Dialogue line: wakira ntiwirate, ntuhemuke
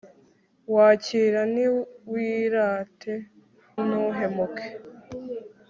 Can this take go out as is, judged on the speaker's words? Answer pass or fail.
pass